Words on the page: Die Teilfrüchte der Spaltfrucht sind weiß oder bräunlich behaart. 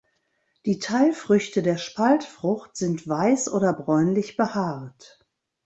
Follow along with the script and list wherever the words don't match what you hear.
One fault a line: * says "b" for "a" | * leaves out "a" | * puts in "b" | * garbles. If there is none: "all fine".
all fine